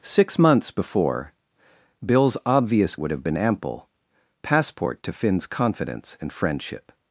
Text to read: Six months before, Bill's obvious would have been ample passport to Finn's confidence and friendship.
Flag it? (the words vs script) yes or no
no